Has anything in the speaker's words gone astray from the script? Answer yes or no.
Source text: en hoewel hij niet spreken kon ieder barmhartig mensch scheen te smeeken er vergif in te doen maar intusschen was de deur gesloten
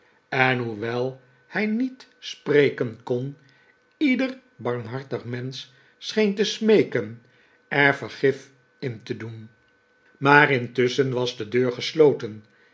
no